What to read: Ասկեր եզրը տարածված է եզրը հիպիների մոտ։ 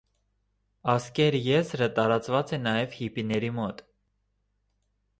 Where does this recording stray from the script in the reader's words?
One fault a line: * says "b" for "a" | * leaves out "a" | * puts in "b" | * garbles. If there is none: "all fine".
* says "նաև" for "եզրը"